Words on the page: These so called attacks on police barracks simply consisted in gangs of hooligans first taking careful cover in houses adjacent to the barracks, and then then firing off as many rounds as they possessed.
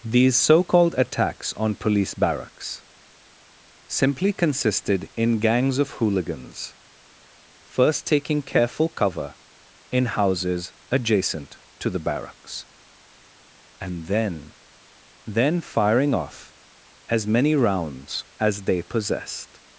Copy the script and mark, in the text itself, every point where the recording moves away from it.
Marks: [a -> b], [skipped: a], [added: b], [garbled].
These so called attacks on police barracks simply consisted in gangs of hooligans first taking careful cover in houses adjacent to the barracks, and then then firing off as many rounds as they possessed.